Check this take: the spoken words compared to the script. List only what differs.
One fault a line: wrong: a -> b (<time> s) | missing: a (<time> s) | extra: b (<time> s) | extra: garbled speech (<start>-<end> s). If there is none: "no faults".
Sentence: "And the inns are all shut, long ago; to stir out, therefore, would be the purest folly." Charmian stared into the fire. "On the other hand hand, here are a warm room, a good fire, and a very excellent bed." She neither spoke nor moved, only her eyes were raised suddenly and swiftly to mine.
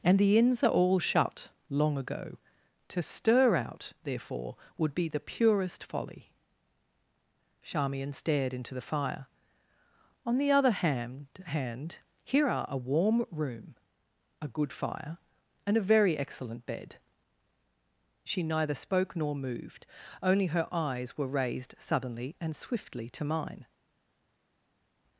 no faults